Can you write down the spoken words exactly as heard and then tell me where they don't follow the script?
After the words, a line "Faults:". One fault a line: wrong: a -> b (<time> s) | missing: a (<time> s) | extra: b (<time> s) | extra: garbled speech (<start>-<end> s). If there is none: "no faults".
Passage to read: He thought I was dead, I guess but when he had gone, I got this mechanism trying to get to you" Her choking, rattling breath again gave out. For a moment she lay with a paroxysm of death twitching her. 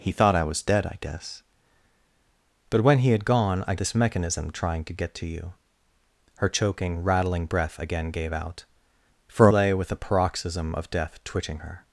He thought I was dead, I guess but when he had gone, I this mechanism trying to get to you" Her choking, rattling breath again gave out. For lay with a paroxysm of death twitching her.
Faults:
missing: got (3.8 s)
missing: a moment she (9.5 s)